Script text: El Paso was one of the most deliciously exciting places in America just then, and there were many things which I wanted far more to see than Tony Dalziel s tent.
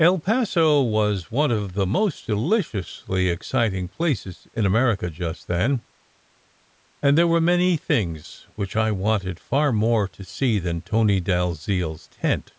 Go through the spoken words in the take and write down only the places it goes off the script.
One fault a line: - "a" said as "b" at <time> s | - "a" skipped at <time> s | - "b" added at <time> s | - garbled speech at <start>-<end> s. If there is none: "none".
none